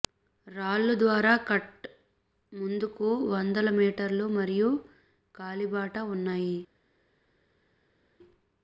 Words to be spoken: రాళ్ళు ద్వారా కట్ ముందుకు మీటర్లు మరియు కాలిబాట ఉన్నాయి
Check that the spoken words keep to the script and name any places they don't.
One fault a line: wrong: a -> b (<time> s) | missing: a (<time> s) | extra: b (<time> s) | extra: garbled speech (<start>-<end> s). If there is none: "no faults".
extra: వందల (3.3 s)